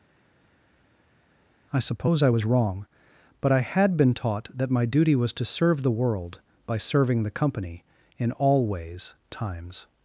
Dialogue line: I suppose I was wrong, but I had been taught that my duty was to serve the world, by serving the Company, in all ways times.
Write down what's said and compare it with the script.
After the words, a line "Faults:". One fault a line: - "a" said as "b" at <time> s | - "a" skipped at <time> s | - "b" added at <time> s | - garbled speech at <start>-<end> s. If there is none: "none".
I suppose I was wrong, but I had been taught that my duty was to serve the world, by serving the Company, in all ways times.
Faults:
none